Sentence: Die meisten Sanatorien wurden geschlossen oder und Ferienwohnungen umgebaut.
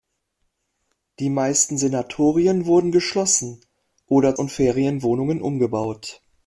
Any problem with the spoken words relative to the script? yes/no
no